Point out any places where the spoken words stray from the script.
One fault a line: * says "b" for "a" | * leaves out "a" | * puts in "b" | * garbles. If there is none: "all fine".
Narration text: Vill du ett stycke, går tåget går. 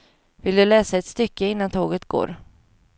* puts in "läsa"
* says "innan" for "går"